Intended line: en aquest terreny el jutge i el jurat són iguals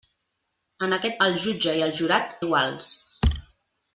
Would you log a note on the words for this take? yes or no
yes